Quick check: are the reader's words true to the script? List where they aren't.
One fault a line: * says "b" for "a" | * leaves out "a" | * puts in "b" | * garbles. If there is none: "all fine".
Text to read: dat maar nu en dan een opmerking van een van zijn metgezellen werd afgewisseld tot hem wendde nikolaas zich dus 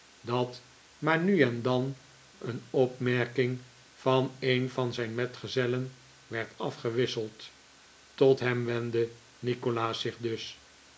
all fine